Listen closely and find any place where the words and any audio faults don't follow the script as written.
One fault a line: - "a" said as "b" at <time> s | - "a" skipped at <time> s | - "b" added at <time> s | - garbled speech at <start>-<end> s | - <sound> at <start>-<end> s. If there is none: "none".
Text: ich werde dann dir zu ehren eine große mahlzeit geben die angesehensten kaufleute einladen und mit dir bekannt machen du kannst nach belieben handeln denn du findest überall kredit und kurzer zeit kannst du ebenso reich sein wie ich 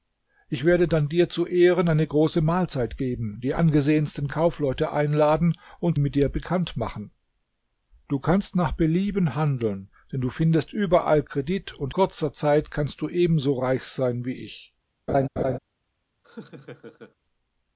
- laugh at 15.1-15.6 s
- laugh at 16.2-17.2 s